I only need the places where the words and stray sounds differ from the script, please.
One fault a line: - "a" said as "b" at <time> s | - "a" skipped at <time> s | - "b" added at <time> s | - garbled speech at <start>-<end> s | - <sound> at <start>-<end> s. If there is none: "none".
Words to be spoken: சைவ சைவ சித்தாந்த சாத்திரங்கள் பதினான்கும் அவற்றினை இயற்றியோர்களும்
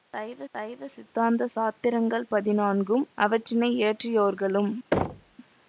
- thud at 4.9-5.4 s